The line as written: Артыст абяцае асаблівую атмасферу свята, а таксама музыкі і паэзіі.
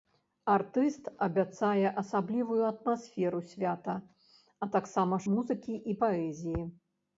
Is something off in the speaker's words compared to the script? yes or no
no